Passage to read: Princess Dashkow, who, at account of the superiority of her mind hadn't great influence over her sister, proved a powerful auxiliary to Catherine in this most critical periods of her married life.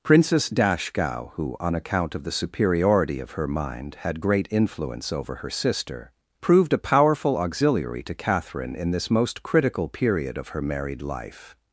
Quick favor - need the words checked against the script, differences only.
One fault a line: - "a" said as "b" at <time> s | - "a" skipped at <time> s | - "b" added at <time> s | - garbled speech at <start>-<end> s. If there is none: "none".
- "at" said as "on" at 1.6 s
- "hadn't" said as "had" at 4.0 s
- "periods" said as "period" at 9.9 s